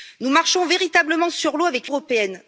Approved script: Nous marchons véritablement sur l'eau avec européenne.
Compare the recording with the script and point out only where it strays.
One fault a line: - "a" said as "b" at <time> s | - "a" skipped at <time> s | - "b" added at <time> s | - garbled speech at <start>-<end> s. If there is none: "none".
none